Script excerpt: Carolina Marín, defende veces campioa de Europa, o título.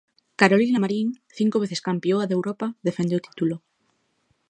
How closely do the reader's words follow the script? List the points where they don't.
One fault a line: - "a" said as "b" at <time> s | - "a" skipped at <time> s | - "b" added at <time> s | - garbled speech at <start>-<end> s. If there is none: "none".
- "defende" said as "cinco" at 1.4 s
- "defende" added at 2.9 s